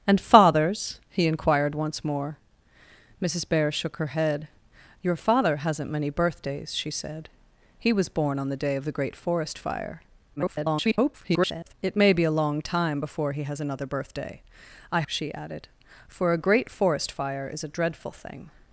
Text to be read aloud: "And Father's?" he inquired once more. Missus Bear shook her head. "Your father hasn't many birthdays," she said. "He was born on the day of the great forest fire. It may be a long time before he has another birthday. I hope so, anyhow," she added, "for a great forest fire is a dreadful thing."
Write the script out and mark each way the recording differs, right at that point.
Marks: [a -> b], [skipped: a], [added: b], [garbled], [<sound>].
"And Father's?" he inquired once more. Missus Bear shook her head. "Your father hasn't many birthdays," she said. "He was born on the day of the great forest fire. [garbled] It may be a long time before he has another birthday. I [skipped: hope so, anyhow,"] she added, "for a great forest fire is a dreadful thing."